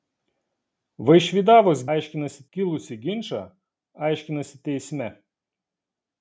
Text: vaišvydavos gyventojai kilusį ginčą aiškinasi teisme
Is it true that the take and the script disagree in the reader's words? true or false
true